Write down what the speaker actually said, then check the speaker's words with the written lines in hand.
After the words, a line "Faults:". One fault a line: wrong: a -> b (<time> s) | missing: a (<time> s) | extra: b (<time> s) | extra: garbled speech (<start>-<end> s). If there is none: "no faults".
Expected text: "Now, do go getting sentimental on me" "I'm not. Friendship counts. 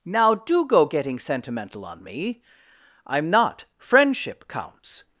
"Now, do go getting sentimental on me" "I'm not. Friendship counts.
Faults:
no faults